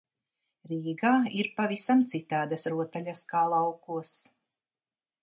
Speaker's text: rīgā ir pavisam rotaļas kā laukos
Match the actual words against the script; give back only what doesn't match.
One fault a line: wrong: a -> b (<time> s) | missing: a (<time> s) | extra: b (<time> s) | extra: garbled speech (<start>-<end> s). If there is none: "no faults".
extra: citādas (2.1 s)